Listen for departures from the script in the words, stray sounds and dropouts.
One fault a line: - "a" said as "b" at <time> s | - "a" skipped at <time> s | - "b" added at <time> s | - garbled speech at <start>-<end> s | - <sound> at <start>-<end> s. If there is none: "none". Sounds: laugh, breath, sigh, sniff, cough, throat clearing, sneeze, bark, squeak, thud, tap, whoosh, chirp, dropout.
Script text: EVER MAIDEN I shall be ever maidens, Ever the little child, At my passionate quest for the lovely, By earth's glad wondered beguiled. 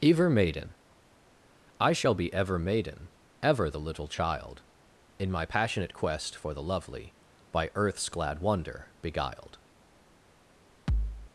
- "maidens" said as "maiden" at 2.6 s
- "At" said as "In" at 5.2 s
- "wondered" said as "wonder" at 8.4 s
- thud at 10.9-11.3 s